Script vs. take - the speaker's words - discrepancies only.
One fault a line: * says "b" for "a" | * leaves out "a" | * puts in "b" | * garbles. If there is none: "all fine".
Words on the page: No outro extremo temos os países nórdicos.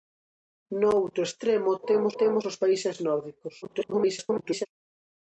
* puts in "temos"
* garbles